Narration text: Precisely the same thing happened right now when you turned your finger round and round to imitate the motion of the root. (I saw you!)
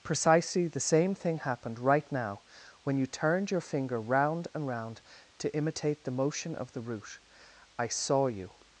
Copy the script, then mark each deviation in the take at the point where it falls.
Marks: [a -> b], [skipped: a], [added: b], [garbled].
Precisely the same thing happened right now when you turned your finger round and round to imitate the motion of the root. (I saw you!)